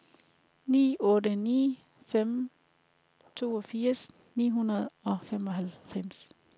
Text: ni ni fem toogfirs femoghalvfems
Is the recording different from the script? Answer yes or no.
yes